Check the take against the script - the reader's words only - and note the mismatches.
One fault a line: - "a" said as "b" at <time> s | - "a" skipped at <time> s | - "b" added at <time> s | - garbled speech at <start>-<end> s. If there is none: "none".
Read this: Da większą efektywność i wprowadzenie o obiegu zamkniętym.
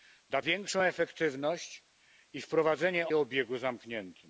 none